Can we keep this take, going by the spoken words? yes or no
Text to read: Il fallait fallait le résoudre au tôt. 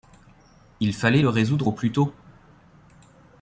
no